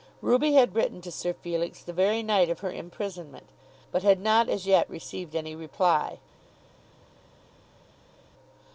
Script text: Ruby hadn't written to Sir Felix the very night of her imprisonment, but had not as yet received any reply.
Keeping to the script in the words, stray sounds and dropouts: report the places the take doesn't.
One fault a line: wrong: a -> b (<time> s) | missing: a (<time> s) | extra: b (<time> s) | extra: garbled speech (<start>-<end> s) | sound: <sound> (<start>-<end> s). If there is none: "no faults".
wrong: hadn't -> had (0.5 s)